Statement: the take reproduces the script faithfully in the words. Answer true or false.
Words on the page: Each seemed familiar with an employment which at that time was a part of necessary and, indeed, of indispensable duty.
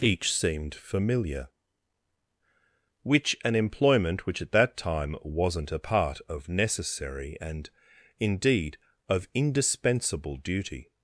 false